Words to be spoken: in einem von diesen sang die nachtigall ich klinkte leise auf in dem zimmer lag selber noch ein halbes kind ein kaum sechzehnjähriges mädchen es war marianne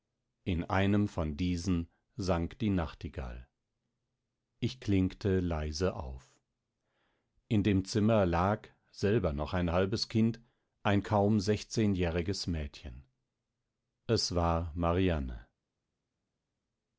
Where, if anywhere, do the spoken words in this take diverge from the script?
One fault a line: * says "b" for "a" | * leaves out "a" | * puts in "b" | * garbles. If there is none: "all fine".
all fine